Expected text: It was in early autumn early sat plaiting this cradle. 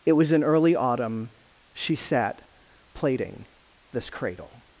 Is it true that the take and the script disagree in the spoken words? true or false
true